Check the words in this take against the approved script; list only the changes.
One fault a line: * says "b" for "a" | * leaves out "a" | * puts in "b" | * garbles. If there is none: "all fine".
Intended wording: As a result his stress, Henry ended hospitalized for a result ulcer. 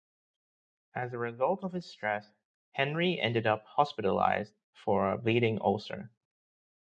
* puts in "of"
* puts in "up"
* says "bleeding" for "result"